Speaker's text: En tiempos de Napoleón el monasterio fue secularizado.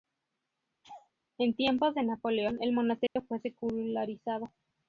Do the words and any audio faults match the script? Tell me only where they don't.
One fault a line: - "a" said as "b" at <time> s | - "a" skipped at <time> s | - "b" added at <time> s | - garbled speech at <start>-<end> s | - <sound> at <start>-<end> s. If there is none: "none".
- laugh at 0.8-1.1 s
- dropout at 3.1-3.2 s